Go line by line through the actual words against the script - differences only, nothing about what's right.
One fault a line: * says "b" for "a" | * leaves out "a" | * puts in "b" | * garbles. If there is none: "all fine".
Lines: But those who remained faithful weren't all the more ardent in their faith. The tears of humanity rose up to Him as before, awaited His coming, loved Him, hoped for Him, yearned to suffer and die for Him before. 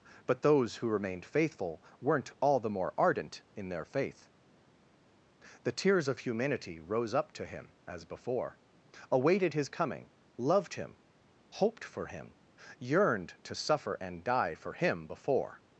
all fine